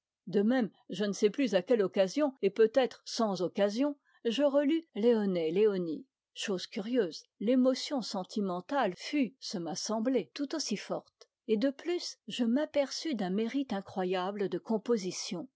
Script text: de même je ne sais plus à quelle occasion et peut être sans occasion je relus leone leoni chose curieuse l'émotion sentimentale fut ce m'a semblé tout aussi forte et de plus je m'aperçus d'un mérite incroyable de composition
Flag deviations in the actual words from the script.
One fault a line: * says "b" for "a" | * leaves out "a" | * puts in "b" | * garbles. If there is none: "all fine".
all fine